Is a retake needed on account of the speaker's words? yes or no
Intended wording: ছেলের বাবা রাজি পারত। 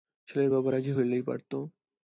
yes